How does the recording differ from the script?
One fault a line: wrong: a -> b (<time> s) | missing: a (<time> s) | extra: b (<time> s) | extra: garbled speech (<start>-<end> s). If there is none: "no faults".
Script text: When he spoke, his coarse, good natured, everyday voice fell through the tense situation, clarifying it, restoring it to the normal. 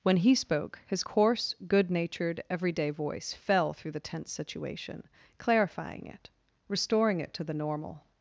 no faults